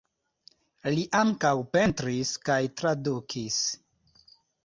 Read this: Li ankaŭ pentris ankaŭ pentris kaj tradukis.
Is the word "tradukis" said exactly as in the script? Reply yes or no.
yes